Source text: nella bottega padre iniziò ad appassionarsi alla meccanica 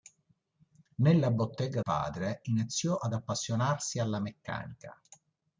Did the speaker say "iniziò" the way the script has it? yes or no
yes